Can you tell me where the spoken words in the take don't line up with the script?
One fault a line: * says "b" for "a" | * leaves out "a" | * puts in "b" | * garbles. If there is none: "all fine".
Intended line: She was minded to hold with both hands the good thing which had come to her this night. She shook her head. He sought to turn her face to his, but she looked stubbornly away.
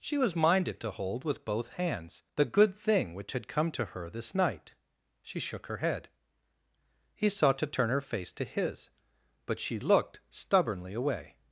all fine